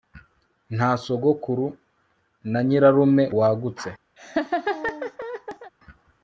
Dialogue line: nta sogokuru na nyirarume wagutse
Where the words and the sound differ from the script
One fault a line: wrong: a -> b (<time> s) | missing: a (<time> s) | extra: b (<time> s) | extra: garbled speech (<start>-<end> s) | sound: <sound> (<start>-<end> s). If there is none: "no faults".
sound: laugh (4.2-5.7 s)